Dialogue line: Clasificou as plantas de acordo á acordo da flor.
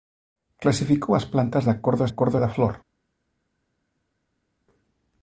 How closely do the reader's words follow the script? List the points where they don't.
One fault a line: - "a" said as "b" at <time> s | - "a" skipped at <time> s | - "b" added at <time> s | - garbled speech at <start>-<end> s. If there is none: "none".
none